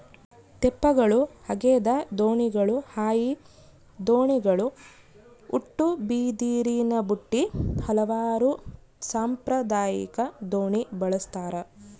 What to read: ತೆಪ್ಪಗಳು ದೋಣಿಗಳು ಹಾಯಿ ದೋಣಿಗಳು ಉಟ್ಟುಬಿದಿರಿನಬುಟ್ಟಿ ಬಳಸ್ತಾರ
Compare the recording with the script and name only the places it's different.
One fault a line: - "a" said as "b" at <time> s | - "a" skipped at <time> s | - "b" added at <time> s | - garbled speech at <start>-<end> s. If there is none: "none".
- "ಹಗೆದ" added at 1.5 s
- "ಹಲವಾರು ಸಾಂಪ್ರದಾಯಿಕ ದೋಣಿ" added at 7.8 s